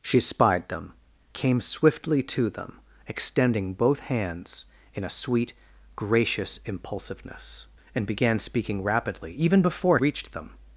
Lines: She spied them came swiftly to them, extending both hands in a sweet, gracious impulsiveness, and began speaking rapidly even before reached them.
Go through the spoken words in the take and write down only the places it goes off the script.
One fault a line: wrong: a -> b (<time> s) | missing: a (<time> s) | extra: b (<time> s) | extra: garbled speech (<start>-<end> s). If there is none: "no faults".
no faults